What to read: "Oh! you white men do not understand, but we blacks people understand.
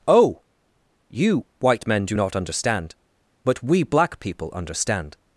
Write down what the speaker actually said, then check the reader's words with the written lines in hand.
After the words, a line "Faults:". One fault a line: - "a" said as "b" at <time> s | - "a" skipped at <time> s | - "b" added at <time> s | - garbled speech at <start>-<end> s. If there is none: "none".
"Oh! you white men do not understand, but we black people understand.
Faults:
- "blacks" said as "black" at 3.8 s